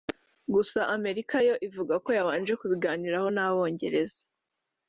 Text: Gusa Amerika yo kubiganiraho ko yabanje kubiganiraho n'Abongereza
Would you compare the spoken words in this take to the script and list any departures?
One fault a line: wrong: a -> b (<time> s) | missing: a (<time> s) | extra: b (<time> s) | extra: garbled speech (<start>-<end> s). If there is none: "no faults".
wrong: kubiganiraho -> ivuga (1.7 s)